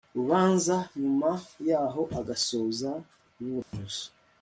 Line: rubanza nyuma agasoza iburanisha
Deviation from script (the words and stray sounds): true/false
true